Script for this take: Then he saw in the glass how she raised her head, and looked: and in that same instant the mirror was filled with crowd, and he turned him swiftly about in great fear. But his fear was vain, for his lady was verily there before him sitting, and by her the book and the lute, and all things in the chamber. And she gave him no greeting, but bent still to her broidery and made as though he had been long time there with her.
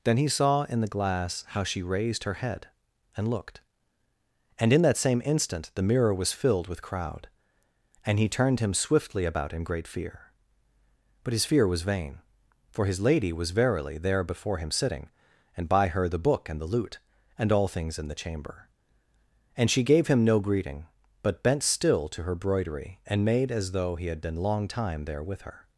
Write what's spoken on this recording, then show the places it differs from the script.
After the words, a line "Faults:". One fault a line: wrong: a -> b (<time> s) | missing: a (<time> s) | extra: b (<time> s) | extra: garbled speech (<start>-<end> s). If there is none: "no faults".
Then he saw in the glass how she raised her head, and looked: and in that same instant the mirror was filled with crowd, and he turned him swiftly about in great fear. But his fear was vain, for his lady was verily there before him sitting, and by her the book and the lute, and all things in the chamber. And she gave him no greeting, but bent still to her broidery and made as though he had been long time there with her.
Faults:
no faults